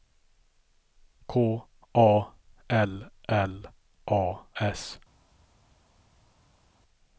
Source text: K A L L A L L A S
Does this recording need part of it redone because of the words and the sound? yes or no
yes